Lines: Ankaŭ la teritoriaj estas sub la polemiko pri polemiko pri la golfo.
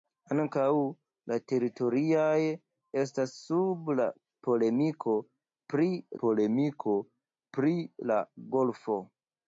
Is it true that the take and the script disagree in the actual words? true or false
false